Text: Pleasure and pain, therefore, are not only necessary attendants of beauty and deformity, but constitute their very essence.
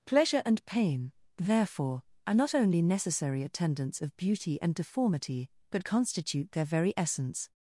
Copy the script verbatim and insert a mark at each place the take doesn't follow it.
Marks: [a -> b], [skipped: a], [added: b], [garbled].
Pleasure and pain, therefore, are not only necessary attendants of beauty and deformity, but constitute their very essence.